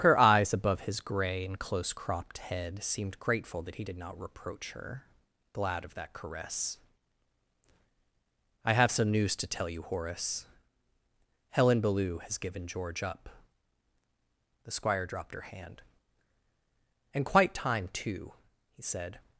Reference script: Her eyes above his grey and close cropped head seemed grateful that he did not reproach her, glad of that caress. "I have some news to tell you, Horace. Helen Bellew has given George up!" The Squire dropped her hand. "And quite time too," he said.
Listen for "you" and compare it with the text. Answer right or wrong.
right